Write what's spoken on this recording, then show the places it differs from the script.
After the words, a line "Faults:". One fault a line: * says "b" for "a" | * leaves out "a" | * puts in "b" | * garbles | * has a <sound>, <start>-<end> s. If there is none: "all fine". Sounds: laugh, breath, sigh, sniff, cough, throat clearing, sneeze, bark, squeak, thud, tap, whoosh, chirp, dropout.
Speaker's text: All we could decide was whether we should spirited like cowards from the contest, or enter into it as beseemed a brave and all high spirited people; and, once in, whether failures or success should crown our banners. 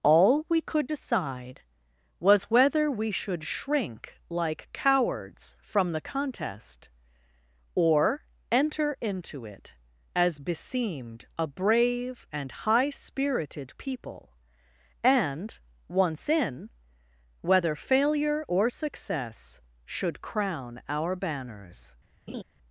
All we could decide was whether we should shrink like cowards from the contest, or enter into it as beseemed a brave and high spirited people; and, once in, whether failure or success should crown our banners.
Faults:
* says "shrink" for "spirited"
* leaves out "all"
* says "failure" for "failures"
* has a laugh, 22.3-22.4 s